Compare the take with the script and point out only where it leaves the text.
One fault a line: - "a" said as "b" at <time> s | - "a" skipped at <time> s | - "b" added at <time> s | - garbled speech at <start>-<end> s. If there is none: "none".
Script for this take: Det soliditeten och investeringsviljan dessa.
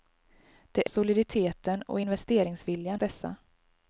none